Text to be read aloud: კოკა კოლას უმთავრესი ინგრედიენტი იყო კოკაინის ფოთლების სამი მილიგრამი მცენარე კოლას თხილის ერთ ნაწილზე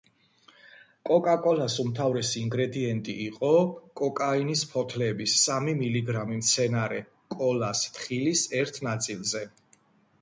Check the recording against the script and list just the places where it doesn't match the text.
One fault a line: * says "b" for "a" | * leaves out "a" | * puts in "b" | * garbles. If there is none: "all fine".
all fine